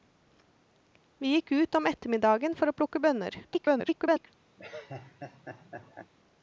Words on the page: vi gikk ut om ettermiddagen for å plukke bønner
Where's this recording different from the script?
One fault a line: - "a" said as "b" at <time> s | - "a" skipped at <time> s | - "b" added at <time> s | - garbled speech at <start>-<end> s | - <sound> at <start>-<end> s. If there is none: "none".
- garbled speech at 3.4-4.3 s
- laugh at 4.6-6.1 s